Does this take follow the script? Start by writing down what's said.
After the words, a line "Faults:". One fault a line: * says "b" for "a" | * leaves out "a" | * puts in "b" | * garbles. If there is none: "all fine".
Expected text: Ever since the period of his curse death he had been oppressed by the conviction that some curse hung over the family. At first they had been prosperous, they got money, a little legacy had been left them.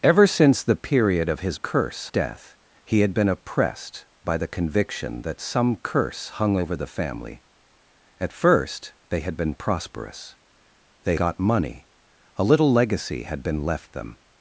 Ever since the period of his curse death he had been oppressed by the conviction that some curse hung over the family. At first they had been prosperous, they got money, a little legacy had been left them.
Faults:
all fine